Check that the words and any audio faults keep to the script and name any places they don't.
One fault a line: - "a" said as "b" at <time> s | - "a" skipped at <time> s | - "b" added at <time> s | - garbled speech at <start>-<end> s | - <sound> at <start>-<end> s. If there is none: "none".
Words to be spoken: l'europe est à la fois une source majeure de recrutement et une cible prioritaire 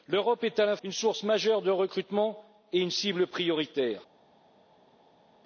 - "fois" skipped at 0.8 s